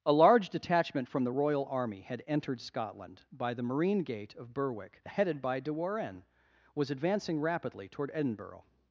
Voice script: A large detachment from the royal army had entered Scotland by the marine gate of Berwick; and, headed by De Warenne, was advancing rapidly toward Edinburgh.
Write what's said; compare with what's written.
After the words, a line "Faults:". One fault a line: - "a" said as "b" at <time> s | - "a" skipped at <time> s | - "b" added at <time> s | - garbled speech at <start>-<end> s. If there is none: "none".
A large detachment from the royal army had entered Scotland by the marine gate of Berwick; headed by De Warenne, was advancing rapidly toward Edinburgh.
Faults:
- "and" skipped at 5.0 s